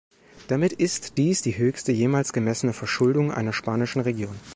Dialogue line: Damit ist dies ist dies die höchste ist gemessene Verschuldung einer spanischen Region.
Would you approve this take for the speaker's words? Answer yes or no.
no